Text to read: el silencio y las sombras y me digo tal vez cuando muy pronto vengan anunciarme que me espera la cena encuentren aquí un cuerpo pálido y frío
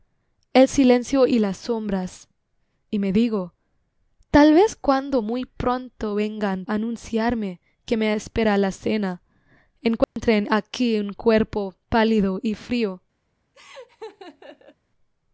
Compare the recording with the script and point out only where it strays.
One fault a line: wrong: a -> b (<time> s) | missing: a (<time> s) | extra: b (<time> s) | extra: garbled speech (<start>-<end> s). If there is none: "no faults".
no faults